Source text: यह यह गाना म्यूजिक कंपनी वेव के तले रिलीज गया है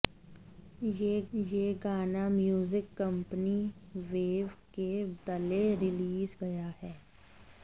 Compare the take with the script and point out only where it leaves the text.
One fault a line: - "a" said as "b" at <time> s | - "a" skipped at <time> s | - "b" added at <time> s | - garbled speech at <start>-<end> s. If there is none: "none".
none